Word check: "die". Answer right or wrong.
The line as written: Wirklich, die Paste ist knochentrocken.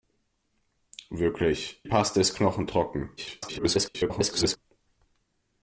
wrong